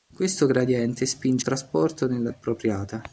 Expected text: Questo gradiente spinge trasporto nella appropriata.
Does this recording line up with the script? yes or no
yes